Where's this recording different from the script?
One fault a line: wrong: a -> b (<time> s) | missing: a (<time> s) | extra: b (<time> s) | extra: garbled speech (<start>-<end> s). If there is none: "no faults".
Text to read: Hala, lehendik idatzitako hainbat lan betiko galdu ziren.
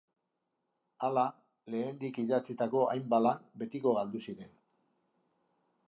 no faults